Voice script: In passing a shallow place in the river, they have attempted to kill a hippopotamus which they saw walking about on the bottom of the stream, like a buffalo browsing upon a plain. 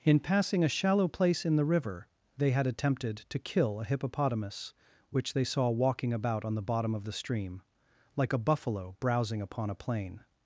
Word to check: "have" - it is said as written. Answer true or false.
false